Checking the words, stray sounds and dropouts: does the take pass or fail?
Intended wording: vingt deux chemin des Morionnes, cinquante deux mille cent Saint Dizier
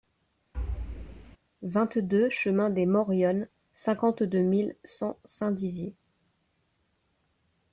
fail